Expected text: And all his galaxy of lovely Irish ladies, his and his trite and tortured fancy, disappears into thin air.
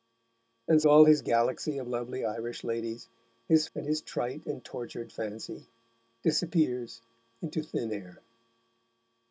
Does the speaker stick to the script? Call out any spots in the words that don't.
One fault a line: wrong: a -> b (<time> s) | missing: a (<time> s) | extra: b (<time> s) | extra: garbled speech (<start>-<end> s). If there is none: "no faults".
no faults